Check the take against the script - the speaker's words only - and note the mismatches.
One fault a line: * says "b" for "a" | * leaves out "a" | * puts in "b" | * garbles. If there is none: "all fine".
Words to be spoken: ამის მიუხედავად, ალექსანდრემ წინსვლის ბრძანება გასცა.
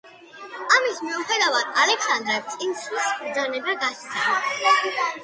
all fine